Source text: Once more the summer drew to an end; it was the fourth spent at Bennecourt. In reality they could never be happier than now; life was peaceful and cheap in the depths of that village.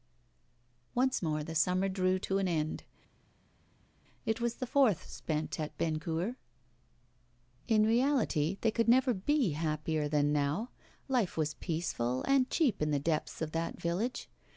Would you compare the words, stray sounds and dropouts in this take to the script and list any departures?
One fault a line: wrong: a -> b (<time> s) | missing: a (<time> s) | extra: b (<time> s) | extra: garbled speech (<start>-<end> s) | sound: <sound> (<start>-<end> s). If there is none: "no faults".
no faults